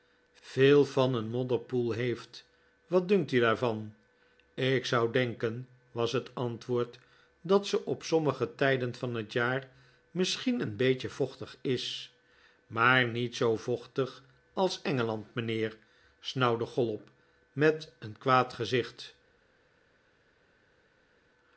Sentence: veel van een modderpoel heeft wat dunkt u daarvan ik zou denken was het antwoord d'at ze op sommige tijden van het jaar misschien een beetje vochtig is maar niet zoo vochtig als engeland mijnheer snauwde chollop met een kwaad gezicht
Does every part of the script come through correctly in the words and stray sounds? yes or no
yes